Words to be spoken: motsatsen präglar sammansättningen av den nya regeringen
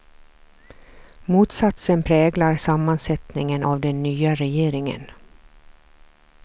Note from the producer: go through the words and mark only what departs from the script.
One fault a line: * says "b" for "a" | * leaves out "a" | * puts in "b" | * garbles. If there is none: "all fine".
all fine